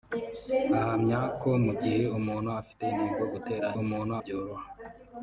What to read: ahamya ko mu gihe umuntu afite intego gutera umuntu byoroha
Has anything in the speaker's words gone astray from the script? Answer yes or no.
no